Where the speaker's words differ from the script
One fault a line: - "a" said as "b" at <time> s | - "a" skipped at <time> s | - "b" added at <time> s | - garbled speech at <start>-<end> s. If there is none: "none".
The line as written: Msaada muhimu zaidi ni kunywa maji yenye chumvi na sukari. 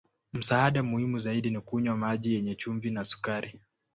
none